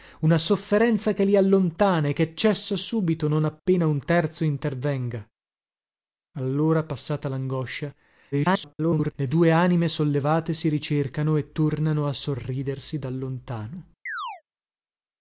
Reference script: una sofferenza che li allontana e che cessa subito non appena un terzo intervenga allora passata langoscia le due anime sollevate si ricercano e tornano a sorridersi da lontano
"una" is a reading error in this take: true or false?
false